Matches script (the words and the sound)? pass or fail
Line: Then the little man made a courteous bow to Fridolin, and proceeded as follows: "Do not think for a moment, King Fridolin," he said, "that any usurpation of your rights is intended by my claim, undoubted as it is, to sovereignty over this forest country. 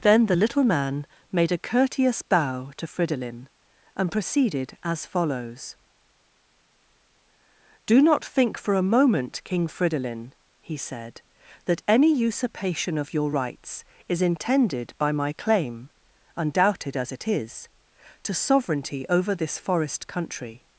pass